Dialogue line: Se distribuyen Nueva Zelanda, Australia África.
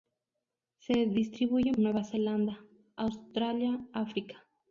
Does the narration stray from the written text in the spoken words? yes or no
no